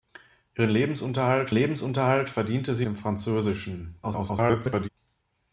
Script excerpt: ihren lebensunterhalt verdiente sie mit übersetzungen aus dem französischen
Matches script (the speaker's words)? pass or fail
fail